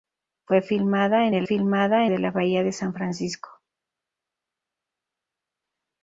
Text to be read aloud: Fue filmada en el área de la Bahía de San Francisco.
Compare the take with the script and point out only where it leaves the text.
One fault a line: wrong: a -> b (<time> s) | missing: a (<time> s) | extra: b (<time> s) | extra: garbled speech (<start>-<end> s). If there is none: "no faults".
wrong: área -> filmada (1.4 s)